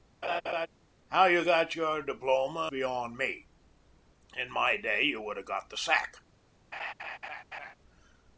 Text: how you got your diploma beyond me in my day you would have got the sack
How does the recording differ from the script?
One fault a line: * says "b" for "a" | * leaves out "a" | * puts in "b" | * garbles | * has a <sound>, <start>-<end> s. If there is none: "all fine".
* has a laugh, 0.2-0.7 s
* has a laugh, 6.7-7.7 s